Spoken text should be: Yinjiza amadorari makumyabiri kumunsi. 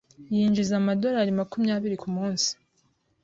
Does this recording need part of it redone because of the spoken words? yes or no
no